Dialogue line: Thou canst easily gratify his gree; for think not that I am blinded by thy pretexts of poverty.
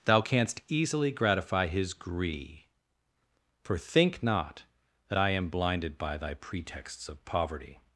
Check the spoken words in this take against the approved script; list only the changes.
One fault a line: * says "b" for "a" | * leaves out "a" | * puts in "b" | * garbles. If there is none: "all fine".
all fine